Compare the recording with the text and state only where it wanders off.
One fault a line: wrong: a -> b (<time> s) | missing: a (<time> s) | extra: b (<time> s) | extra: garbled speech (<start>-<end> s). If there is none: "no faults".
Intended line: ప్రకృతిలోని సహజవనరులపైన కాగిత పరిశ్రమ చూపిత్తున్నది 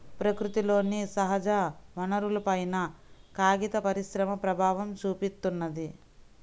extra: ప్రభావం (4.3 s)